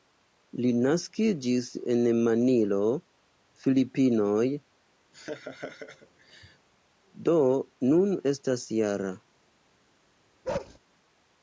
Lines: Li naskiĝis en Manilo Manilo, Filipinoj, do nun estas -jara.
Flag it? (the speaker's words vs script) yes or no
yes